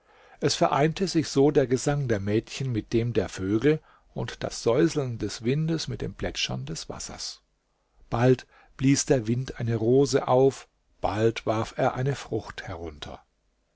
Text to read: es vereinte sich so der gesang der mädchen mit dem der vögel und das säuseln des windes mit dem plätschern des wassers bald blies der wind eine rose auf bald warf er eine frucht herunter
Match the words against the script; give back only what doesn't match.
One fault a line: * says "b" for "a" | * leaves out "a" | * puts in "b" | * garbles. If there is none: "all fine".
all fine